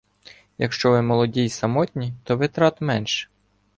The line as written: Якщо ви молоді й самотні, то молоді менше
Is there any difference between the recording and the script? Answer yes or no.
yes